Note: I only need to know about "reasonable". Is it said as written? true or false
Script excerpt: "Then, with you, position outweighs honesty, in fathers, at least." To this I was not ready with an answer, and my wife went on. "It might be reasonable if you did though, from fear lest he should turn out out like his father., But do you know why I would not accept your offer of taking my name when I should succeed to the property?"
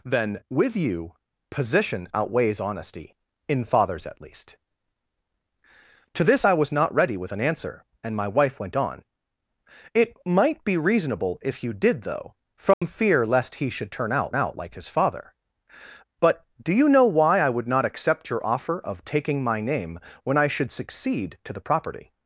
true